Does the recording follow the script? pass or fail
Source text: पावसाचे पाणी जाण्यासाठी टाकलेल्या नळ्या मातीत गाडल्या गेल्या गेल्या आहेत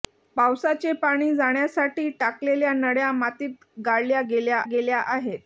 pass